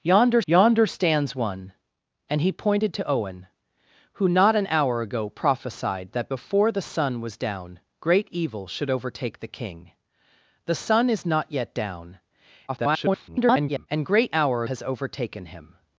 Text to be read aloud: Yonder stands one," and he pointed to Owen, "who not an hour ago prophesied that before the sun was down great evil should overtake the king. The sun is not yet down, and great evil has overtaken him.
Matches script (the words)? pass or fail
fail